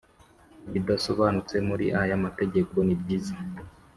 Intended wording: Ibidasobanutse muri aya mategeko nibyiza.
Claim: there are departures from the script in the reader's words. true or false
false